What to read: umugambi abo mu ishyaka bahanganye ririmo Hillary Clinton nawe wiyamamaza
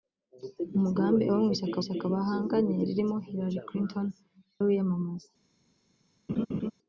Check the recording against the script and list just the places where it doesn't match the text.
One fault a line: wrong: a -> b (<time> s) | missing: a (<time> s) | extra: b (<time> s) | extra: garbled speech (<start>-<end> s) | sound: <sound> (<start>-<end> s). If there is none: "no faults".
extra: ishyaka (1.8 s)
missing: nawe (4.1 s)
sound: laugh (6.3-6.7 s)